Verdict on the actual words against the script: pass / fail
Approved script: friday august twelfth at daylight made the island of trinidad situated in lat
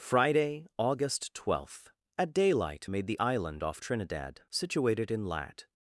fail